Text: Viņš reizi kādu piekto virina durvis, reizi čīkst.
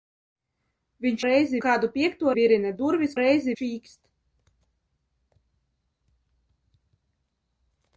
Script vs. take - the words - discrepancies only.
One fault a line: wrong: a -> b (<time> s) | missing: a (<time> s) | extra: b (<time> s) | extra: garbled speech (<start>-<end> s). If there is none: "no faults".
no faults